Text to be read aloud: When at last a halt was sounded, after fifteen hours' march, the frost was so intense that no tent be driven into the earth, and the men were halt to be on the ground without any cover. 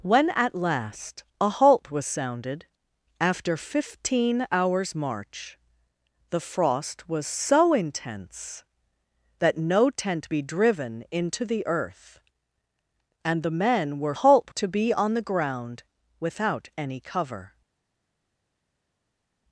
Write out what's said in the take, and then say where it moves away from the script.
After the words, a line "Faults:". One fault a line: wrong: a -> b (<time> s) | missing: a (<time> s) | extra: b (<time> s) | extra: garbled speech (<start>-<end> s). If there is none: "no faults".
When at last a halt was sounded, after fifteen hours' march, the frost was so intense that no tent be driven into the earth, and the men were halt to be on the ground without any cover.
Faults:
no faults